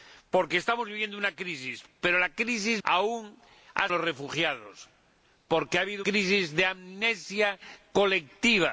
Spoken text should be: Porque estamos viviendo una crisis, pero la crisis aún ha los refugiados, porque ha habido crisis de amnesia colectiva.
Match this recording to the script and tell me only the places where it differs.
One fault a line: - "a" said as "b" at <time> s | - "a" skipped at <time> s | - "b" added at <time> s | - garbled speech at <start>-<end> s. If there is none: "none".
none